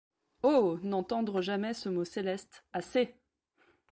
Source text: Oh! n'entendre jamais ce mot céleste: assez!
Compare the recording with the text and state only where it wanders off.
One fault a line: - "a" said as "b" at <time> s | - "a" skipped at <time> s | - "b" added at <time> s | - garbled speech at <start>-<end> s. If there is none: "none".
none